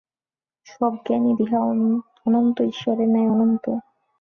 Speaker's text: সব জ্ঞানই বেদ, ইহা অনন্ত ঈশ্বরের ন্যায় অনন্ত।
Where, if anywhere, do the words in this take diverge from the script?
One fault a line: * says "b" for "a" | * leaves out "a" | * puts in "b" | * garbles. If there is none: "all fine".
* leaves out "বেদ"